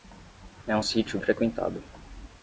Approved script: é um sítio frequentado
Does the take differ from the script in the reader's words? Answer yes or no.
no